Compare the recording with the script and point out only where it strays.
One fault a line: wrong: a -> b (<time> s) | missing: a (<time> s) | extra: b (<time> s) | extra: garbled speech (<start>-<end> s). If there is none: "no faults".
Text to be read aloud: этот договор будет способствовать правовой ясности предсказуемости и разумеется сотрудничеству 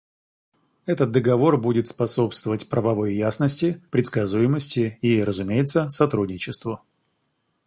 no faults